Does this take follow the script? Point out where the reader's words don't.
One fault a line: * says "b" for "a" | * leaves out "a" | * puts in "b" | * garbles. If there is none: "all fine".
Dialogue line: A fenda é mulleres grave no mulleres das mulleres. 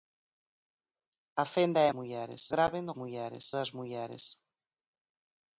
all fine